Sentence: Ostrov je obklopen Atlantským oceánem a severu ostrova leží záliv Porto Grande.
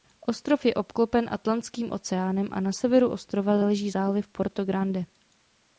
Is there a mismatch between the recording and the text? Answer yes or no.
yes